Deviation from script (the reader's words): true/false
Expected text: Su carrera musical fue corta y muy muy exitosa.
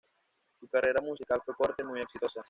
true